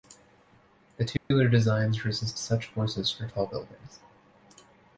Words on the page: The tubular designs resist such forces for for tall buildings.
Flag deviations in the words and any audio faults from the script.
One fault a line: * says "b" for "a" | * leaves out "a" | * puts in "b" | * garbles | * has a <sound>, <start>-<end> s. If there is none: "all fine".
* has a dropout, 1.2-1.3 s
* leaves out "for"